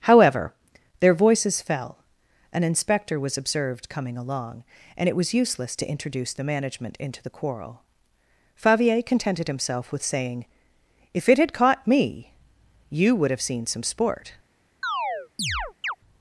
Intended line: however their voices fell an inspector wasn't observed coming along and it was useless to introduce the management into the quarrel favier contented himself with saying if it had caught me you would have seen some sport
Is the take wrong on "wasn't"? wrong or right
wrong